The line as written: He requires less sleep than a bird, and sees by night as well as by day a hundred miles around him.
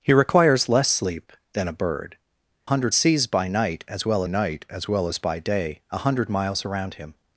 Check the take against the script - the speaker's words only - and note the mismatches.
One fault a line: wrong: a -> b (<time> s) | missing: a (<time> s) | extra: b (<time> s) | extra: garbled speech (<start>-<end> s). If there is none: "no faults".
wrong: and -> hundred (2.6 s)
extra: night as well (4.3 s)